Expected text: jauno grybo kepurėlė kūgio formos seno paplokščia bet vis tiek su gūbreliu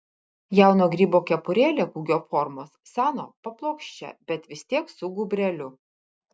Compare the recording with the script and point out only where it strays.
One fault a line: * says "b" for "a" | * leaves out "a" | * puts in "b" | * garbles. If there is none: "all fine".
all fine